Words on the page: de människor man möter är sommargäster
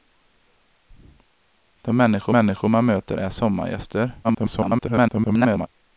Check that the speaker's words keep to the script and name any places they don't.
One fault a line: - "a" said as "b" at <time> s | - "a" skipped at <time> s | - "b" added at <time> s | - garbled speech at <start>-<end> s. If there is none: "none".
- "människor" added at 2.3 s
- garbled speech at 4.2-5.7 s